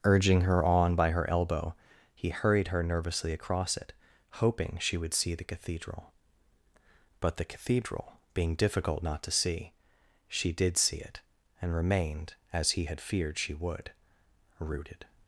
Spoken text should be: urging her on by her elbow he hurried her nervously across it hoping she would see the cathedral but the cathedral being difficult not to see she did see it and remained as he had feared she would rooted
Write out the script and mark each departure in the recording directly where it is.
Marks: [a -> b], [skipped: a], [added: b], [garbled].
urging her on by her elbow he hurried her nervously across it hoping she would see the cathedral but the cathedral being difficult not to see she did see it and remained as he had feared she would rooted